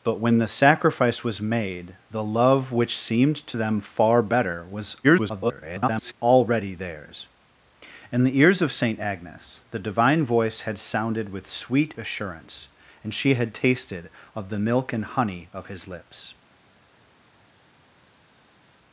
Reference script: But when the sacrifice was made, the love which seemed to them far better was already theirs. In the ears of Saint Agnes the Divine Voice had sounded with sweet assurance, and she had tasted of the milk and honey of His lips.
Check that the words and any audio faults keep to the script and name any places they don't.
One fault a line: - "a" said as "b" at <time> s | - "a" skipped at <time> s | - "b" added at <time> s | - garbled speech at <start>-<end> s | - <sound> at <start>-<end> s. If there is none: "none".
- garbled speech at 5.0-6.1 s